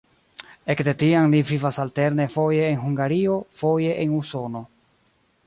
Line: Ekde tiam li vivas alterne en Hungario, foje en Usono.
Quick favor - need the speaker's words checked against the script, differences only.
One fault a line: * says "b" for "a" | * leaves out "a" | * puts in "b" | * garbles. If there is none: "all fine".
* puts in "foje"